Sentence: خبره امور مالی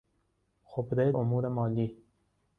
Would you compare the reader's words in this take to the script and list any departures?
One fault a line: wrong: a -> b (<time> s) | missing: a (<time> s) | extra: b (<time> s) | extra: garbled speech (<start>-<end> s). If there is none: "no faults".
no faults